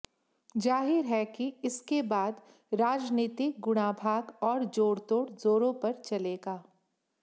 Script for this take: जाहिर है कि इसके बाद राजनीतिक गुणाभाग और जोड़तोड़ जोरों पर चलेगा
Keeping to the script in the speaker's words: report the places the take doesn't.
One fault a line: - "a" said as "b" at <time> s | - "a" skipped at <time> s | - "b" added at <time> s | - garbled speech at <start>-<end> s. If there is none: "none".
none